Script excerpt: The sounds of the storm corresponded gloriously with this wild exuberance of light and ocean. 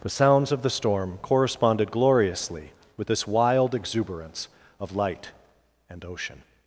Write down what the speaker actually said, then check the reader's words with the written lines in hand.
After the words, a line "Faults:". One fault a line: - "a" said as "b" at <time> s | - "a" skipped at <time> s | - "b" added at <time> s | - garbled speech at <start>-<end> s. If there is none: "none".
The sounds of the storm corresponded gloriously with this wild exuberance of light and ocean.
Faults:
none